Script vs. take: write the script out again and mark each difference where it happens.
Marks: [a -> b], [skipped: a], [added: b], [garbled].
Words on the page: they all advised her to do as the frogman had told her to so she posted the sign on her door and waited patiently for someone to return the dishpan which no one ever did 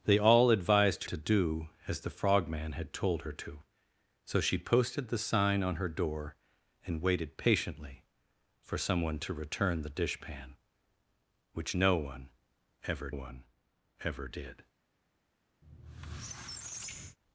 they all advised [skipped: her] to do as the frogman had told her to so she posted the sign on her door and waited patiently for someone to return the dishpan which no one ever [added: one ever] did